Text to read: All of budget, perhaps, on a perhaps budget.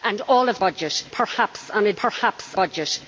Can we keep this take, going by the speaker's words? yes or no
yes